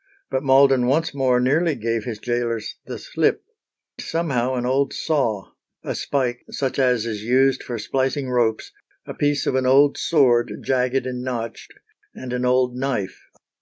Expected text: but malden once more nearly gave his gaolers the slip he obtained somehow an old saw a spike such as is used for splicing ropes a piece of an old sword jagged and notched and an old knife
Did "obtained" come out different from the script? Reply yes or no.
yes